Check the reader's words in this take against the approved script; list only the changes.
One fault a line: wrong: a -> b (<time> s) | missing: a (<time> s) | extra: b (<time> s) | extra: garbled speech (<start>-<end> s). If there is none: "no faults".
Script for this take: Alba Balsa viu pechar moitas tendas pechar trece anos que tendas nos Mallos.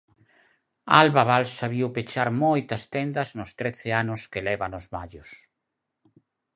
wrong: pechar -> nos (3.4 s)
wrong: tendas -> leva (4.5 s)